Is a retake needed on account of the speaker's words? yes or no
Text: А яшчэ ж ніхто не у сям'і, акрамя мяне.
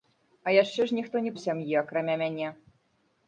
no